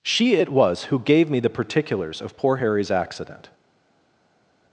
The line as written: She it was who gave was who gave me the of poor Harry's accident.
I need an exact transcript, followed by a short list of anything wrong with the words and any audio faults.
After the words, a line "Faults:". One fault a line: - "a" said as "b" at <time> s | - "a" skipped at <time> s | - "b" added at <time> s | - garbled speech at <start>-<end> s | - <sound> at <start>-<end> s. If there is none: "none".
She it was who gave me the particulars of poor Harry's accident.
Faults:
- "was who gave" skipped at 1.3 s
- "particulars" added at 1.5 s